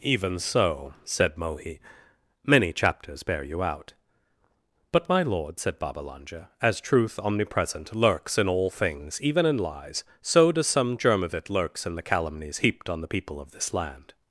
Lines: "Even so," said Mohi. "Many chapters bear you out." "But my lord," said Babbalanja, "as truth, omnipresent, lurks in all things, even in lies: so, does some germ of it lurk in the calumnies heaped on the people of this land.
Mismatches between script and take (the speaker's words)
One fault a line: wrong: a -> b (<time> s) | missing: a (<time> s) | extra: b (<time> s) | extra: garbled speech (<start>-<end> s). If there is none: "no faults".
wrong: lurk -> lurks (11.5 s)